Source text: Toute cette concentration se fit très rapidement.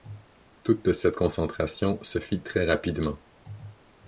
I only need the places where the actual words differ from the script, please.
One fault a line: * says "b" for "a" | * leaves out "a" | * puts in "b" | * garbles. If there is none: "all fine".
all fine